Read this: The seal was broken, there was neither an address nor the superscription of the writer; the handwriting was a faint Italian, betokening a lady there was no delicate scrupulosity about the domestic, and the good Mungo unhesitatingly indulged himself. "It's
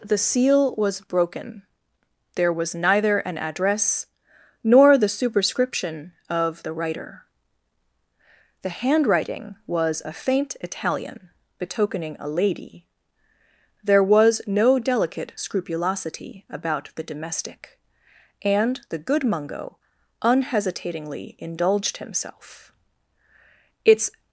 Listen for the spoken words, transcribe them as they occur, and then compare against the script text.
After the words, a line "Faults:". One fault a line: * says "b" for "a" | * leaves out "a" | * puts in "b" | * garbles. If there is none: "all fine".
The seal was broken, there was neither an address nor the superscription of the writer; the handwriting was a faint Italian, betokening a lady there was no delicate scrupulosity about the domestic, and the good Mungo unhesitatingly indulged himself. "It's
Faults:
all fine